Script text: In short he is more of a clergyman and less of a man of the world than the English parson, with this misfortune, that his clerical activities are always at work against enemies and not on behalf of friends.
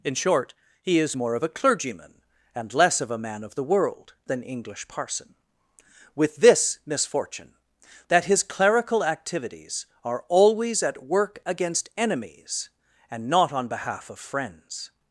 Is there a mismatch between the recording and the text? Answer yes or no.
yes